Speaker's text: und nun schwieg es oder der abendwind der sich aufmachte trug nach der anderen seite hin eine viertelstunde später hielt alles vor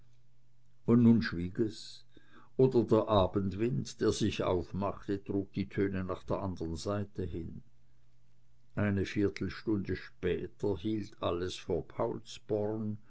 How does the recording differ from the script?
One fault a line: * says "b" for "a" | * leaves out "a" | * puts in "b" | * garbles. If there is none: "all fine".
* puts in "die töne"